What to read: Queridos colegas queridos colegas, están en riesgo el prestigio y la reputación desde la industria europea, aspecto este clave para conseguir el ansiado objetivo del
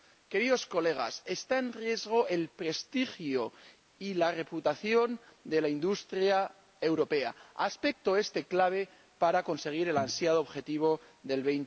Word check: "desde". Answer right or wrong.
wrong